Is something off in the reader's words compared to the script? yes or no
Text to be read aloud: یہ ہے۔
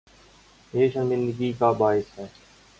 yes